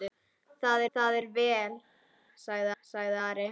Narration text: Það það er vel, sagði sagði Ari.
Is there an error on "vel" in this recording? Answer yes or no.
no